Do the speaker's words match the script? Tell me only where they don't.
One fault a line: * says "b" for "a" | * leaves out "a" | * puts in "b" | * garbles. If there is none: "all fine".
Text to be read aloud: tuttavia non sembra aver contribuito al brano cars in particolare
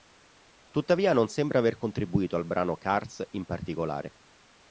all fine